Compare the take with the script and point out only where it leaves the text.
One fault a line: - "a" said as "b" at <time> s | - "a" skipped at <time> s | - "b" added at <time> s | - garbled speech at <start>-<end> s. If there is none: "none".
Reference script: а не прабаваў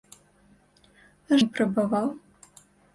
none